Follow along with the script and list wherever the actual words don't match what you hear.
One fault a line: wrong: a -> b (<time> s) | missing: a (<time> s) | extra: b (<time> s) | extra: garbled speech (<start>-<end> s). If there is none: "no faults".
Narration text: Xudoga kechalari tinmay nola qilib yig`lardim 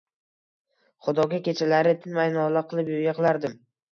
no faults